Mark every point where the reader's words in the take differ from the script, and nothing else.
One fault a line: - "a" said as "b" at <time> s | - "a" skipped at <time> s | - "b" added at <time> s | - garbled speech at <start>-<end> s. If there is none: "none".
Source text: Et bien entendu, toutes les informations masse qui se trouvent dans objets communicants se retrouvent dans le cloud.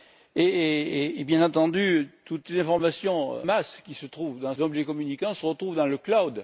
none